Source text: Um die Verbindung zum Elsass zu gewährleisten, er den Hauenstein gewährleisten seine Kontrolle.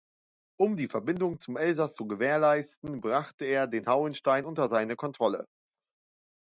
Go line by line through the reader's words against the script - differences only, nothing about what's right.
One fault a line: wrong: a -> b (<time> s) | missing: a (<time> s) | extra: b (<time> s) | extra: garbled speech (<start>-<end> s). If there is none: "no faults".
extra: brachte (3.0 s)
wrong: gewährleisten -> unter (4.4 s)